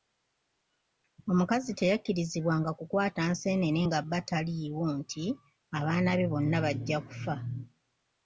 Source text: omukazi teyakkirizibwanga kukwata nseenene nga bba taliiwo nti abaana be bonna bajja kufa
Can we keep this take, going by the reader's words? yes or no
yes